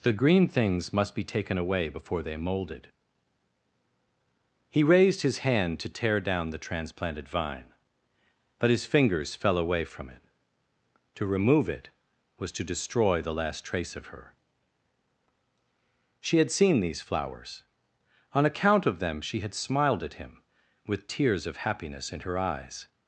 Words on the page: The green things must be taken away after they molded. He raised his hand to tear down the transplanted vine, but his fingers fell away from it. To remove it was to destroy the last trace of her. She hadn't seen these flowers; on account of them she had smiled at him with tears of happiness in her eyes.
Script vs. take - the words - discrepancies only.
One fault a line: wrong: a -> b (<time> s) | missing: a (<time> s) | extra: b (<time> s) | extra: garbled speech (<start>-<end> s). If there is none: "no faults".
wrong: after -> before (1.9 s)
wrong: hadn't -> had (16.4 s)